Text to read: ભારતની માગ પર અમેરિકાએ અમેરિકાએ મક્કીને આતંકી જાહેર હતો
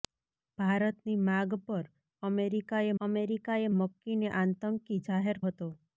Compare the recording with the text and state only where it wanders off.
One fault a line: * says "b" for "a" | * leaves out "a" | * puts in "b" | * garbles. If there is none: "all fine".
all fine